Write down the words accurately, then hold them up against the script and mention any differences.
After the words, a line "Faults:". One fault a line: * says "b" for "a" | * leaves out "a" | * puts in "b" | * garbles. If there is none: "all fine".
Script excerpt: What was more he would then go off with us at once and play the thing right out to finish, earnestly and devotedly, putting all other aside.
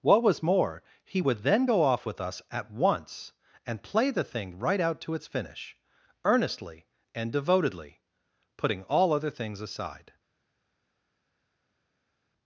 What was more he would then go off with us at once and play the thing right out to its finish, earnestly and devotedly, putting all other things aside.
Faults:
* puts in "its"
* puts in "things"